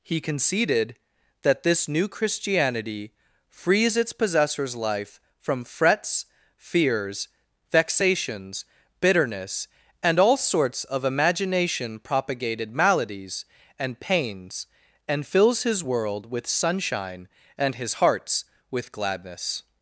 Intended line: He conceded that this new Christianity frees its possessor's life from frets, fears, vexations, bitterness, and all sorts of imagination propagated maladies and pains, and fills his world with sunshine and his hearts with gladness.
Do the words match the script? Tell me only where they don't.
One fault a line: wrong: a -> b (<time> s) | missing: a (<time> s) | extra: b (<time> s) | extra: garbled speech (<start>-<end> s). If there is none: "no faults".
no faults